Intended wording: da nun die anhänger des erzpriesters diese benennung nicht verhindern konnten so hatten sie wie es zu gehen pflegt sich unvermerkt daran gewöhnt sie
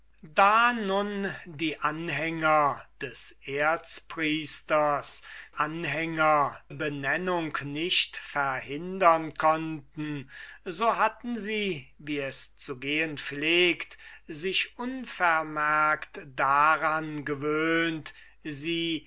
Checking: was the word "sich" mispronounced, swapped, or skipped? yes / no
no